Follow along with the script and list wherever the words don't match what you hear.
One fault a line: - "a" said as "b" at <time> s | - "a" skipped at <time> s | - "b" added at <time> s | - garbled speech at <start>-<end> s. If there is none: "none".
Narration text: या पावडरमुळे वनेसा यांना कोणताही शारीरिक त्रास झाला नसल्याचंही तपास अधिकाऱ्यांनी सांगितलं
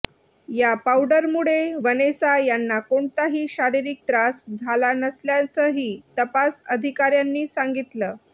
none